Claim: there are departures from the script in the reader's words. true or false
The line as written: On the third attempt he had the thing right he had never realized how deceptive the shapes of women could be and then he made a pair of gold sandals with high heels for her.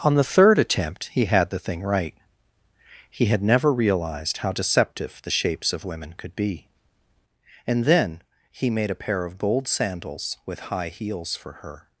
false